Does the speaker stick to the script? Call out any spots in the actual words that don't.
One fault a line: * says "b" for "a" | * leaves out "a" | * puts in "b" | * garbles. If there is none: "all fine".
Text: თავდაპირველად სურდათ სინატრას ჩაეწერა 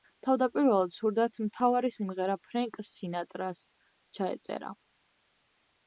* puts in "მთავარი სიმღერა ფრენკ"